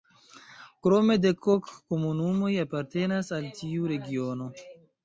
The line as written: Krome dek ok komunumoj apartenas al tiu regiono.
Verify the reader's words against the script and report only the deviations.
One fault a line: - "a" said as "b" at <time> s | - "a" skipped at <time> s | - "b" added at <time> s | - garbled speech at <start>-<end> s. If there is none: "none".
none